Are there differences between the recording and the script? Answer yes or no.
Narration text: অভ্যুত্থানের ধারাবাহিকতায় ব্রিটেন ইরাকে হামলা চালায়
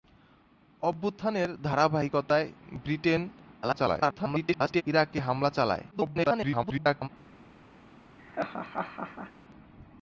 yes